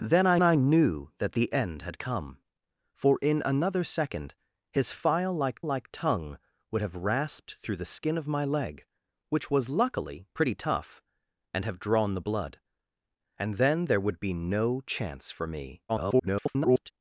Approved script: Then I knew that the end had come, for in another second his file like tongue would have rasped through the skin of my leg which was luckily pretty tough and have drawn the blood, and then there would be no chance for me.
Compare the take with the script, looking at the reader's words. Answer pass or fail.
fail